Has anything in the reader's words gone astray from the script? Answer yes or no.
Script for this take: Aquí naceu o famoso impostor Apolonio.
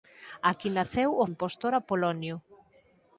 yes